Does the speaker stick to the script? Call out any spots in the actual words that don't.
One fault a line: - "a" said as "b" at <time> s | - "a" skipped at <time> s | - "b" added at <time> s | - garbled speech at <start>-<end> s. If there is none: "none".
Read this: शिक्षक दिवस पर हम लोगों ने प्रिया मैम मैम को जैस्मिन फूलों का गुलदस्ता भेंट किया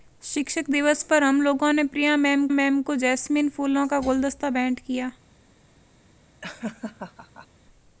none